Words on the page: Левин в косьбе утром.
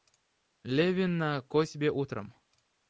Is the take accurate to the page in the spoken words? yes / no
no